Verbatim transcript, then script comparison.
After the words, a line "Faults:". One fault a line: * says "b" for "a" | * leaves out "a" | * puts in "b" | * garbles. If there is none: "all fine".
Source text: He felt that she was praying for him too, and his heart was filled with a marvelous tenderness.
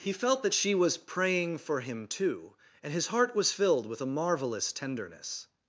He felt that she was praying for him too, and his heart was filled with a marvelous tenderness.
Faults:
all fine